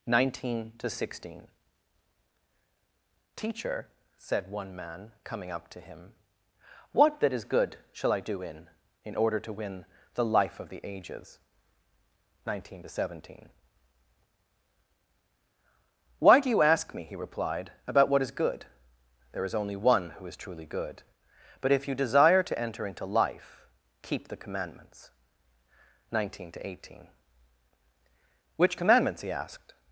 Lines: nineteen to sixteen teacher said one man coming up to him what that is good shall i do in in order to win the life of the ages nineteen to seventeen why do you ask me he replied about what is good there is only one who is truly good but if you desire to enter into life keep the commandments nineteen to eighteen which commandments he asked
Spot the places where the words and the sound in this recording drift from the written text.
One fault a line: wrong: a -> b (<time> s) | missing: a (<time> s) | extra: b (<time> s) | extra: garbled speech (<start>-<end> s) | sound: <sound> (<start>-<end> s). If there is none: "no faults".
no faults